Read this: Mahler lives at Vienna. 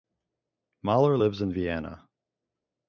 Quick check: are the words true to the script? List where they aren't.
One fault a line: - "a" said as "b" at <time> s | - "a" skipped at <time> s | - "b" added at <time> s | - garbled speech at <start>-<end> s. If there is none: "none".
- "at" said as "in" at 1.4 s